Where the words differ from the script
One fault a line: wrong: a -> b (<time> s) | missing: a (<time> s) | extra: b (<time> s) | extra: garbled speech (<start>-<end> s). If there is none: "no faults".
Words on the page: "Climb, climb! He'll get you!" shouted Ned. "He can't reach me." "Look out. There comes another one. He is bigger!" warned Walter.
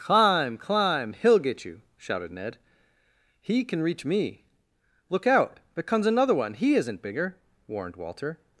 wrong: can't -> can (3.6 s)
wrong: is -> isn't (6.7 s)